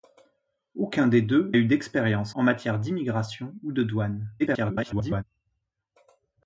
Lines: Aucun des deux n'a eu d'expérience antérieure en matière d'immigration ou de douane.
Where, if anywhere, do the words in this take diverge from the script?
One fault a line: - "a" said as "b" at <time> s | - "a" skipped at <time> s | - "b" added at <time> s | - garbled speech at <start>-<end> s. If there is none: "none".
- "n'a" skipped at 1.5 s
- "antérieure" skipped at 2.4 s
- garbled speech at 4.4-5.2 s